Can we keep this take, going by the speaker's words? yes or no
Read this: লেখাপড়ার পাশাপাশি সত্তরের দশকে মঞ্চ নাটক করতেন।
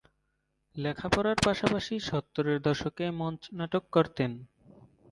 yes